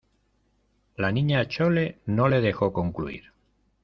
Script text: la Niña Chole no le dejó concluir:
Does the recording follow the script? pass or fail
pass